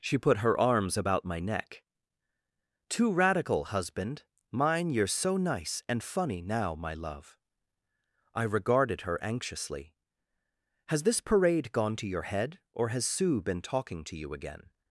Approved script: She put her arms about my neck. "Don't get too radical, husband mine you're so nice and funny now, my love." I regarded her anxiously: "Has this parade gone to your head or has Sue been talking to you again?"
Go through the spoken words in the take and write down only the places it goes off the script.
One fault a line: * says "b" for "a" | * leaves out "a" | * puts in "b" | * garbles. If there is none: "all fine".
* leaves out "Don't get"